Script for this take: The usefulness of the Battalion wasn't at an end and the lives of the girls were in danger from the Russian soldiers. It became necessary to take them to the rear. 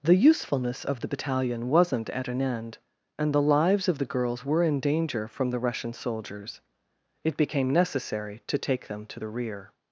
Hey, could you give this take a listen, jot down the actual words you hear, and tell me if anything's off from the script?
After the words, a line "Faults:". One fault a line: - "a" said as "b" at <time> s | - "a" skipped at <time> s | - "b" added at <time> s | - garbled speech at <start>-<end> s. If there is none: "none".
The usefulness of the Battalion wasn't at an end and the lives of the girls were in danger from the Russian soldiers. It became necessary to take them to the rear.
Faults:
none